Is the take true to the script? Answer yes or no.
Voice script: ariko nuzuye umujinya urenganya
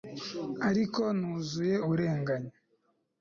no